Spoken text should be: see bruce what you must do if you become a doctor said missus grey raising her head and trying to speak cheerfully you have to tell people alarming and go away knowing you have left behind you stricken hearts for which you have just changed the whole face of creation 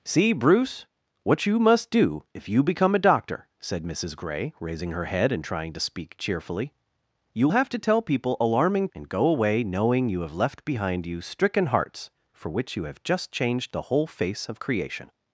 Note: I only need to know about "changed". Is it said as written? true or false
true